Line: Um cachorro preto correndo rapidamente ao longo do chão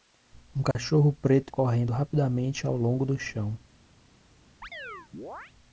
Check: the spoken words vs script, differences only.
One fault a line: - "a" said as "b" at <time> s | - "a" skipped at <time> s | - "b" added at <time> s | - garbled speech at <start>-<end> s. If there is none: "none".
none